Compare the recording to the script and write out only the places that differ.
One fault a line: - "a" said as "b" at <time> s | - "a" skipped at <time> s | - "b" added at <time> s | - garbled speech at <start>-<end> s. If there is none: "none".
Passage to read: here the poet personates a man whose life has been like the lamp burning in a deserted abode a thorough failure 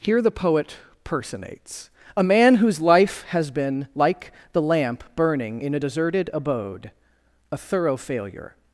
none